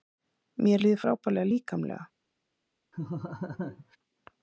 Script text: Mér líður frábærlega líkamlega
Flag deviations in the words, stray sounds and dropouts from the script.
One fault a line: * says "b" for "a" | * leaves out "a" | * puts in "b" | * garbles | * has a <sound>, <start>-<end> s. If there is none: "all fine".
* has a laugh, 2.9-4.0 s